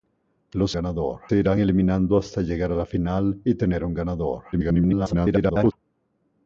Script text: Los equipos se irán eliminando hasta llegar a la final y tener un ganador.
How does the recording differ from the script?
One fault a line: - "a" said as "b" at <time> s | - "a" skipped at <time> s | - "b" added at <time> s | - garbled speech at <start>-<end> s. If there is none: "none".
- "equipos" said as "ganador" at 0.7 s
- garbled speech at 4.5-5.7 s